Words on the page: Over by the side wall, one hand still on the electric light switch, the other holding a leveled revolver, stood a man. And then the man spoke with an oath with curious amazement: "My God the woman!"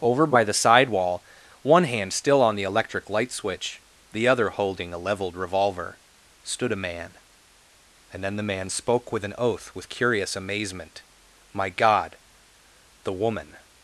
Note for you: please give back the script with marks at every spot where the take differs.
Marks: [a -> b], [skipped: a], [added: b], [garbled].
Over by the side wall, one hand still on the electric light switch, the other holding a leveled revolver, stood a man. And then the man spoke with an oath with curious amazement: "My God the woman!"